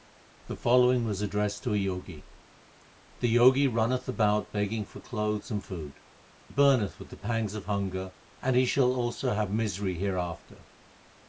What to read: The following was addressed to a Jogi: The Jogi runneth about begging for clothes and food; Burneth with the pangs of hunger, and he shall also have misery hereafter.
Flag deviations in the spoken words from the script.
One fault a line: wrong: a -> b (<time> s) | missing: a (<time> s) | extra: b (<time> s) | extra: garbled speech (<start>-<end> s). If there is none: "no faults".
no faults